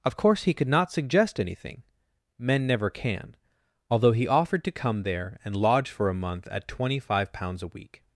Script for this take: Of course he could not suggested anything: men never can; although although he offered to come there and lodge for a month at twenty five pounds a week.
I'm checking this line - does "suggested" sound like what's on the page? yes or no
no